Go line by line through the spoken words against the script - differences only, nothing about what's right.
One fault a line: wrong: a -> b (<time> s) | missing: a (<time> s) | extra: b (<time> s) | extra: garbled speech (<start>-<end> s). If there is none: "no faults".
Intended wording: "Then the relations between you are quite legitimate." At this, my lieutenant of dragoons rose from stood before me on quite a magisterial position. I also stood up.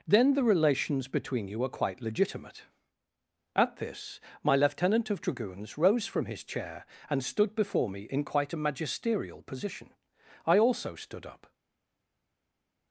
extra: his chair and (6.2 s)
wrong: on -> in (8.1 s)